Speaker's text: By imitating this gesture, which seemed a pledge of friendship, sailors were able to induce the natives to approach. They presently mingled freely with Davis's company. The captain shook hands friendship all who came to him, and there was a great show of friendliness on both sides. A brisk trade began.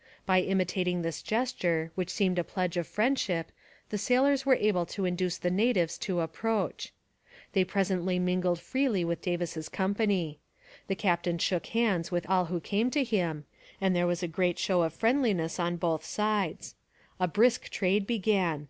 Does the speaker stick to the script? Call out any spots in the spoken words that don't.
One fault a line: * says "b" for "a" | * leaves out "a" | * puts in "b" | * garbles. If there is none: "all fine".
* puts in "the"
* says "with" for "friendship"